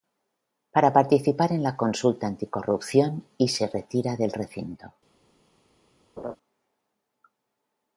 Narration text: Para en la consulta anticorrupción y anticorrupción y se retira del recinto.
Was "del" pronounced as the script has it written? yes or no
yes